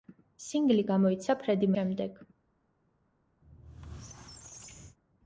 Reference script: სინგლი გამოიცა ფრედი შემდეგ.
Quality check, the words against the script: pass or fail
pass